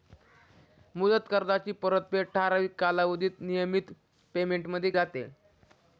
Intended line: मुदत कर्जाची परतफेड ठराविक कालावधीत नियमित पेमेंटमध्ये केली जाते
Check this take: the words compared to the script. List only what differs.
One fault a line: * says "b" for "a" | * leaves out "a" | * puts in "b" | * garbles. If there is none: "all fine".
* leaves out "केली"